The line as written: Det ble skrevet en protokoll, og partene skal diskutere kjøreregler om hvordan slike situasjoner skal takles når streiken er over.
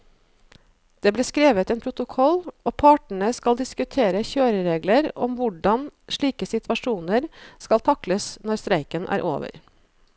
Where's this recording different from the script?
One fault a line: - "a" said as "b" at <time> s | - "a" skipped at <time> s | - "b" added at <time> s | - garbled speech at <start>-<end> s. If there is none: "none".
none